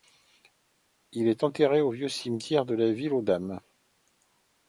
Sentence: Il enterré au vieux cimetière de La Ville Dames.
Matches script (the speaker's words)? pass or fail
fail